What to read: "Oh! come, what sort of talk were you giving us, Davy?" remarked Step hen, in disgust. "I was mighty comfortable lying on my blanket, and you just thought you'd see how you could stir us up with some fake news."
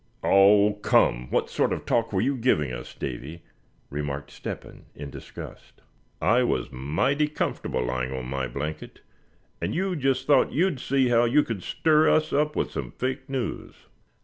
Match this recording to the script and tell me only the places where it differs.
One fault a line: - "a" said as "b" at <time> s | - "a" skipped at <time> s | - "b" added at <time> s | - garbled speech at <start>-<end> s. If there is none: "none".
none